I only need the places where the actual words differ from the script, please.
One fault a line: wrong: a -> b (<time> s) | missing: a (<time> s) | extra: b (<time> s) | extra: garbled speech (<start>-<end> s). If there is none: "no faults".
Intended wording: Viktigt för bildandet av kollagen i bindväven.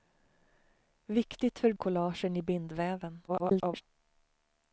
missing: bildandet av (1.7 s)
extra: garbled speech (3.3-3.8 s)